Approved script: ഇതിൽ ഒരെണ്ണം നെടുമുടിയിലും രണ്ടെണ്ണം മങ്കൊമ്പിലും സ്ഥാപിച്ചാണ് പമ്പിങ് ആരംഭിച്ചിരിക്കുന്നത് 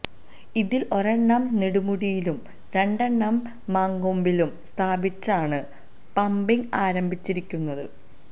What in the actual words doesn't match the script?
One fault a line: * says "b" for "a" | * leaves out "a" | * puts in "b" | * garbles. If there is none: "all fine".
all fine